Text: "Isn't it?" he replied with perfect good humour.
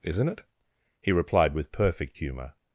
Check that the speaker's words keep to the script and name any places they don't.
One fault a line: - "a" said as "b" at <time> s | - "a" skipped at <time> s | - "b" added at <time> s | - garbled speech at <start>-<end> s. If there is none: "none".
- "good" skipped at 2.2 s